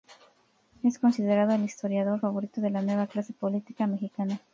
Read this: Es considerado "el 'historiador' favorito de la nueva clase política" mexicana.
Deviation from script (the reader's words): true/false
false